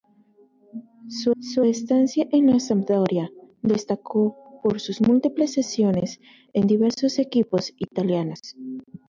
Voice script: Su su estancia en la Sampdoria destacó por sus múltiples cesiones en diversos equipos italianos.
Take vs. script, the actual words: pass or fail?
pass